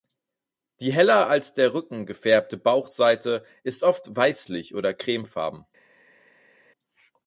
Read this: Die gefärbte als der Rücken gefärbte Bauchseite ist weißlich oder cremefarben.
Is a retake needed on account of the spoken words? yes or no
yes